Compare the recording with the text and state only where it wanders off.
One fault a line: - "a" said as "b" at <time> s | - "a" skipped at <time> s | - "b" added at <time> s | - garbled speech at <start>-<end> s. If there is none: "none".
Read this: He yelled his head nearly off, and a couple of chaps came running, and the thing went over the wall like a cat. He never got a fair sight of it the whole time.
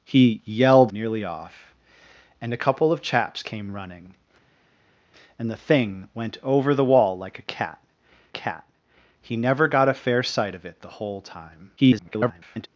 - "his head" skipped at 0.9 s
- "cat" added at 8.3 s
- garbled speech at 11.8-12.7 s